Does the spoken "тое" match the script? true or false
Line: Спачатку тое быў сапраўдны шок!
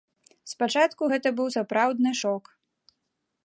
false